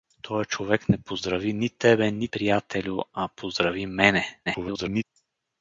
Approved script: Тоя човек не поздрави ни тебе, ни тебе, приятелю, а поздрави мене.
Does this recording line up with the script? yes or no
no